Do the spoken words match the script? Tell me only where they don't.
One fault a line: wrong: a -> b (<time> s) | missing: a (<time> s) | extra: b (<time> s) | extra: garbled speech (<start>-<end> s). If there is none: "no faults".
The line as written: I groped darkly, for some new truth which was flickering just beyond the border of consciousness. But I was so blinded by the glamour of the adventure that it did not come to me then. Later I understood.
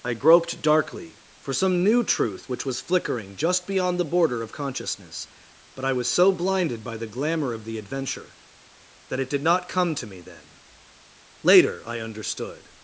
no faults